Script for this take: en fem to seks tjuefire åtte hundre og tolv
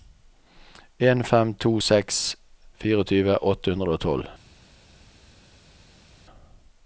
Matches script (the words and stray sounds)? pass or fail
pass